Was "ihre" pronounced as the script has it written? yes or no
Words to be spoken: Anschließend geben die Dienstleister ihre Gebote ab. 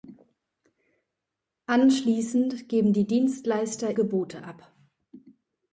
no